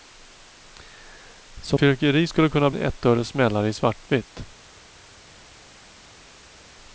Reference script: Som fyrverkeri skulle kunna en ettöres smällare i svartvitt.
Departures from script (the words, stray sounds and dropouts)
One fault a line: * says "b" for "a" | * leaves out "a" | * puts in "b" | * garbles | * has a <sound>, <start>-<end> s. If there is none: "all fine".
all fine